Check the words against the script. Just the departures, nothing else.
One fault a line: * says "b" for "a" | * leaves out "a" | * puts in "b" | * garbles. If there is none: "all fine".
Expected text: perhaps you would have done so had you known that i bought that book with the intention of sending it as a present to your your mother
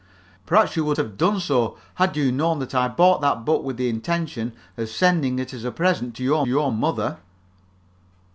all fine